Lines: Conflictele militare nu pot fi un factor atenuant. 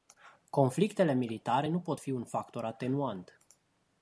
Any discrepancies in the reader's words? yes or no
no